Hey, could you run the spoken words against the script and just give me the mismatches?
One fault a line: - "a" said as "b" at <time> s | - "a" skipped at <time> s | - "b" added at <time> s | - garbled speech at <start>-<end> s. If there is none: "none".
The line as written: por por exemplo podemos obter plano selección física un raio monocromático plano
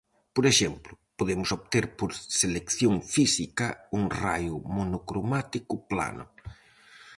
- "por" skipped at 0.5 s
- "plano" said as "por" at 2.0 s